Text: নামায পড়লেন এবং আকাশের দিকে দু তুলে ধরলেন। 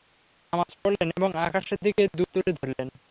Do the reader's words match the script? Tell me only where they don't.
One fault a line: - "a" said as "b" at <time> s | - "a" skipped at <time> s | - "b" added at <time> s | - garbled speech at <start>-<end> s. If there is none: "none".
none